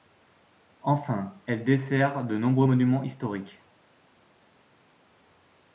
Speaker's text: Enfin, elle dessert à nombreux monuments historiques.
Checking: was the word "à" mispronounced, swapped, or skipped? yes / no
yes